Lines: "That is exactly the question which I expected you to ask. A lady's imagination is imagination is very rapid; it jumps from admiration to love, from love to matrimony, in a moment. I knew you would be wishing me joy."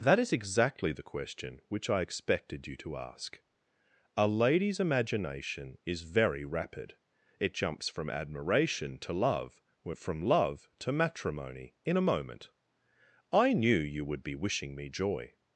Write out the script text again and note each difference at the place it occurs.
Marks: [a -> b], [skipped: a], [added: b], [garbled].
"That is exactly the question which I expected you to ask. A lady's imagination is [skipped: imagination is] very rapid; it jumps from admiration to love, from love to matrimony, in a moment. I knew you would be wishing me joy."